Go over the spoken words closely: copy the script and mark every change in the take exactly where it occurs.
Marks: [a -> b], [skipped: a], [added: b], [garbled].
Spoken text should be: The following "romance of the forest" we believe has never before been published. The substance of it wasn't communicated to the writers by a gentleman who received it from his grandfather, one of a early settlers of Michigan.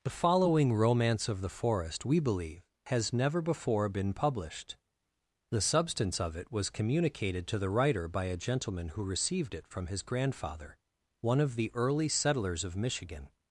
The following "romance of the forest" we believe has never before been published. The substance of it [wasn't -> was] communicated to the [writers -> writer] by a gentleman who received it from his grandfather, one of [a -> the] early settlers of Michigan.